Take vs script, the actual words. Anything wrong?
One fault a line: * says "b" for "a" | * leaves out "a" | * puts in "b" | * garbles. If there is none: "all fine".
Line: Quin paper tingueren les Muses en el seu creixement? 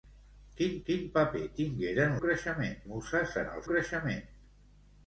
* puts in "quin"
* says "creixement" for "les"
* leaves out "seu"